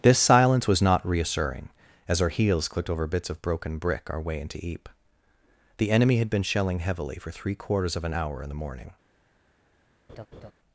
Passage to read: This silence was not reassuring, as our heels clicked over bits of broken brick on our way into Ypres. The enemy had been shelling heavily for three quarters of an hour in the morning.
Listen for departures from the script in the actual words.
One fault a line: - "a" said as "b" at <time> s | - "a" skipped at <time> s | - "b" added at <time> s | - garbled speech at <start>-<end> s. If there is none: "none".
- "on" skipped at 4.1 s